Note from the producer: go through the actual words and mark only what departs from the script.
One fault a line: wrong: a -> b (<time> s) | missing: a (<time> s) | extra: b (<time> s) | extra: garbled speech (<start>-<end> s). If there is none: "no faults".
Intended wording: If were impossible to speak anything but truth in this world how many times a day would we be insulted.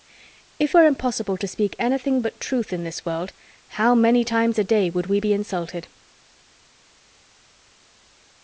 no faults